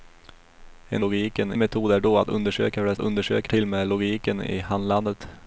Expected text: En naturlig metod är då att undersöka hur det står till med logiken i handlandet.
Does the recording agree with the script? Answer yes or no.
no